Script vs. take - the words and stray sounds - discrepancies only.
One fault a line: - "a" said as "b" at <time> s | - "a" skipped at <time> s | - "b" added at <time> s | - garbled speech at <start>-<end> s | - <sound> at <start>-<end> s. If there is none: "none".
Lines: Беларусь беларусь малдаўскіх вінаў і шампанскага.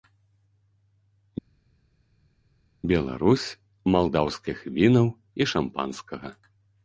- "беларусь" skipped at 3.4 s